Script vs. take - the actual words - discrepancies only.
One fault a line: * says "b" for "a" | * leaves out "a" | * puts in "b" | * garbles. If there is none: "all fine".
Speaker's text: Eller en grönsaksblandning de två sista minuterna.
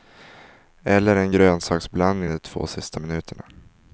all fine